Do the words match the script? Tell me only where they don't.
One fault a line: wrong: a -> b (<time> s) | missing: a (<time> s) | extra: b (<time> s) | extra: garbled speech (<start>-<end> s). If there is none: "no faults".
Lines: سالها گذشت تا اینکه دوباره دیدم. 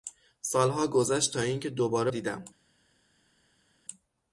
no faults